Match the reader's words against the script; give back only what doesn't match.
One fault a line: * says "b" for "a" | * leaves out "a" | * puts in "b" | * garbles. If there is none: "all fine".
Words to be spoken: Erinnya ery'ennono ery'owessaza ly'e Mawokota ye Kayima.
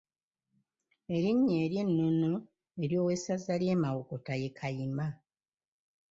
all fine